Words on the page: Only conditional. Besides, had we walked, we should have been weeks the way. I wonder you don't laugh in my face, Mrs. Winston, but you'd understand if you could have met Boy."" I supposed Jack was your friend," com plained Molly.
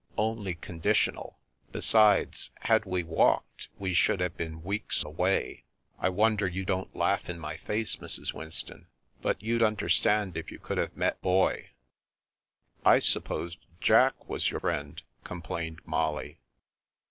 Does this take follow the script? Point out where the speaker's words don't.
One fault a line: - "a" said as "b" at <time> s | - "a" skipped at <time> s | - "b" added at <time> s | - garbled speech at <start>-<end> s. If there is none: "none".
none